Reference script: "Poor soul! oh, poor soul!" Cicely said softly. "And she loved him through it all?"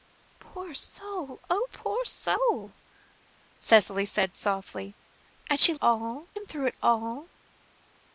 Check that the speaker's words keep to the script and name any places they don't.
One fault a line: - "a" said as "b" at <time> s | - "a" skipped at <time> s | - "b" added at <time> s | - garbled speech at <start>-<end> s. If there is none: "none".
- "loved" said as "all" at 5.8 s